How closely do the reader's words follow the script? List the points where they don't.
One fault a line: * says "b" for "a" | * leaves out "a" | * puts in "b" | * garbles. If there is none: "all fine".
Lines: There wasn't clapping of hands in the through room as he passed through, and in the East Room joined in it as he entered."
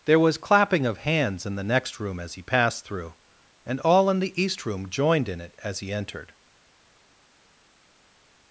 * says "was" for "wasn't"
* says "next" for "through"
* puts in "all"